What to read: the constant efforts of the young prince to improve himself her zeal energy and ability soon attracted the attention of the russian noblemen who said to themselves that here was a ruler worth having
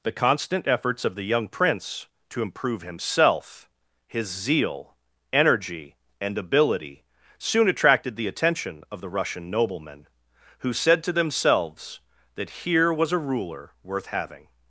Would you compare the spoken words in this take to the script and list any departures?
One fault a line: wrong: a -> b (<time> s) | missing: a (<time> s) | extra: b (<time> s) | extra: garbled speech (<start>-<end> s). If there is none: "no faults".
wrong: her -> his (4.1 s)